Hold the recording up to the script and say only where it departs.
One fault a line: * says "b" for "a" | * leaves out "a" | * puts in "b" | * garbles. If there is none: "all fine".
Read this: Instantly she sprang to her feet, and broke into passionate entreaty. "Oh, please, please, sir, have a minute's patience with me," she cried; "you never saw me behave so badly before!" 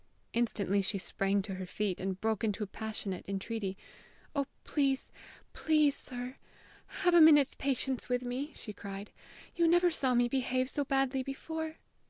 all fine